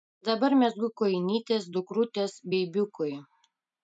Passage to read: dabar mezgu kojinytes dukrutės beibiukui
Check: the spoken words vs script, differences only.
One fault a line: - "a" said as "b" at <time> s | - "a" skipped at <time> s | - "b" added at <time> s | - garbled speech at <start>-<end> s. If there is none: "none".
none